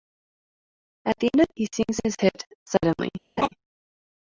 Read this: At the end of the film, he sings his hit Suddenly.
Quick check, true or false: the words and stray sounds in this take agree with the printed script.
false